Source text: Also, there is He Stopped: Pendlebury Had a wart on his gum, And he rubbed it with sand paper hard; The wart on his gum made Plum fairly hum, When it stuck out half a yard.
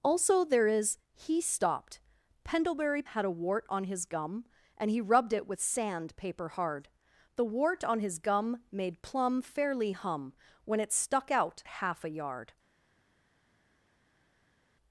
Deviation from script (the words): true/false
false